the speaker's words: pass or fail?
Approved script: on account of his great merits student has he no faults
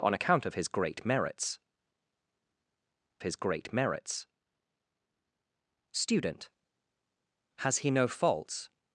fail